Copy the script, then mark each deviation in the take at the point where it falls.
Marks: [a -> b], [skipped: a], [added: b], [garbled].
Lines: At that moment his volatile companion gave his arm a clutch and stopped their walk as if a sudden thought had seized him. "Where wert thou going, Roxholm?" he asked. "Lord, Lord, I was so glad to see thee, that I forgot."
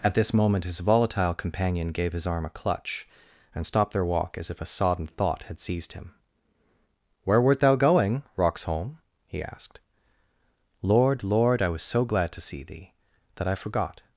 At [that -> this] moment his volatile companion gave his arm a clutch and stopped their walk as if a [sudden -> sodden] thought had seized him. "Where wert thou going, Roxholm?" he asked. "Lord, Lord, I was so glad to see thee, that I forgot."